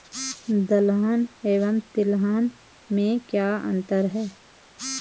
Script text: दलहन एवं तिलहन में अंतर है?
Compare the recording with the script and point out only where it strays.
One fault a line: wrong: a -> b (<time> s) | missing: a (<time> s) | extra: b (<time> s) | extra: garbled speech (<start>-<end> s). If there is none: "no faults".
extra: क्या (3.3 s)